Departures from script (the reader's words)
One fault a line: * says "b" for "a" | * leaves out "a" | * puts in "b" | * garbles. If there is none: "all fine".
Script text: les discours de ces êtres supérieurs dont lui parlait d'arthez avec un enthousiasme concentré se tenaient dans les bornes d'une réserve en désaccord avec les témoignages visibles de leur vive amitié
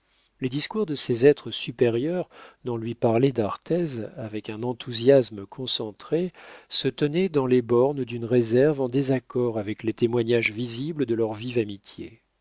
all fine